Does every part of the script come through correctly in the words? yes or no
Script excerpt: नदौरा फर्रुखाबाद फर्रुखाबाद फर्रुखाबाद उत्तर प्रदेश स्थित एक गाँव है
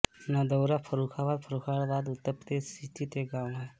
no